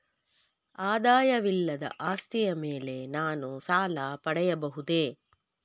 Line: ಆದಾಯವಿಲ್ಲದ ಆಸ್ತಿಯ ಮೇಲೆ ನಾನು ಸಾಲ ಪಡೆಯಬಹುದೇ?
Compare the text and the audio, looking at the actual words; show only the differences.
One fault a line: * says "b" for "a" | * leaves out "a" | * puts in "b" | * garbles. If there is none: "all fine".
all fine